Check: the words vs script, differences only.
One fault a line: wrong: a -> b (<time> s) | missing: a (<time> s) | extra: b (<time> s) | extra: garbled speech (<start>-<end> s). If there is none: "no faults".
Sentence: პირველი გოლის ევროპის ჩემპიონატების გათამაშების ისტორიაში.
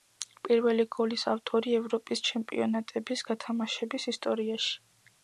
extra: ავტორი (1.3 s)